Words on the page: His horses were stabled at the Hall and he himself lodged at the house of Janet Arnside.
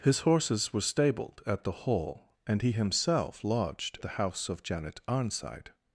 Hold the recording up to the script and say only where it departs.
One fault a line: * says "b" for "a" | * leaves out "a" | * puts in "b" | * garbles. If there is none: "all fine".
* leaves out "at"